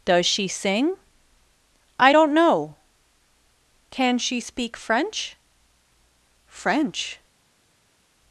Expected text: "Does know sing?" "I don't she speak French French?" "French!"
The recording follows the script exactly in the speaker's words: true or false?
false